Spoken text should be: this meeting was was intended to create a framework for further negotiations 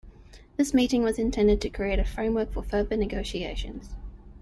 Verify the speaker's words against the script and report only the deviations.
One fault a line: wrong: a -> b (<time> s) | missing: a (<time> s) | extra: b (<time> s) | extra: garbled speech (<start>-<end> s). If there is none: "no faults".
missing: was (1.2 s)